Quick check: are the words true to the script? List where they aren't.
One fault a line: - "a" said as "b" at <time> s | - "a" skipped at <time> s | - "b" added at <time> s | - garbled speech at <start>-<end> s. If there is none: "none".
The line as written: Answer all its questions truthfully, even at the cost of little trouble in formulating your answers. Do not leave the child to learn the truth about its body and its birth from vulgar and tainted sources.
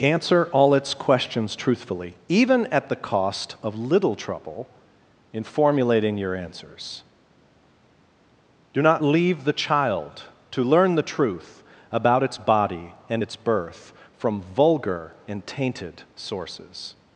none